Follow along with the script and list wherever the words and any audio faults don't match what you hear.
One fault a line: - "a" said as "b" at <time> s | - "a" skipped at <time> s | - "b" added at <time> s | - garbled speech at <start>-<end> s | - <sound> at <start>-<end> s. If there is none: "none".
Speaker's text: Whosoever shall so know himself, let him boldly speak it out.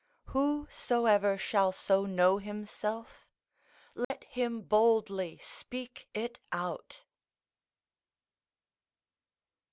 - dropout at 4.0-4.1 s